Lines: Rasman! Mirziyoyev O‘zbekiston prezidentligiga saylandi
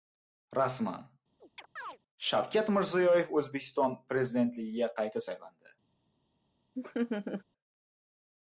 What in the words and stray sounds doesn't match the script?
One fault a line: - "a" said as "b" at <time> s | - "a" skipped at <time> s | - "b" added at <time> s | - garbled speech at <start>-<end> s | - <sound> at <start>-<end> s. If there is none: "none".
- chirp at 1.4-2.0 s
- "Shavkat" added at 2.3 s
- "qayta" added at 5.0 s
- laugh at 6.8-7.4 s